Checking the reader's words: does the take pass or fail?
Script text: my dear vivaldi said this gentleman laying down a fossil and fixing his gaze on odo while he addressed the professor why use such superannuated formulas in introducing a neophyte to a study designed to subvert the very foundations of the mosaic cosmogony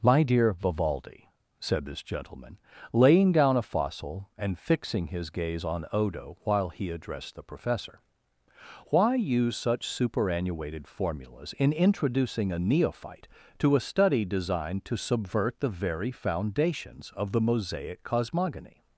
pass